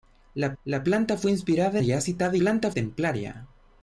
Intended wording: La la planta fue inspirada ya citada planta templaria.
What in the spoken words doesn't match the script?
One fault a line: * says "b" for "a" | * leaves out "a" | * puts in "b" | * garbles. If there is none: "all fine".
all fine